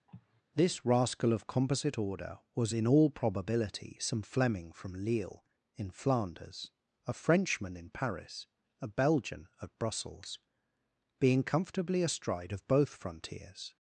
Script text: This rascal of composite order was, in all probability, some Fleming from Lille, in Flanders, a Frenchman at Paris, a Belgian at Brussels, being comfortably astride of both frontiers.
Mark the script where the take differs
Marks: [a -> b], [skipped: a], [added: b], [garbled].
This rascal of composite order was, in all probability, some Fleming from Lille, in Flanders, a Frenchman [at -> in] Paris, a Belgian at Brussels, being comfortably astride of both frontiers.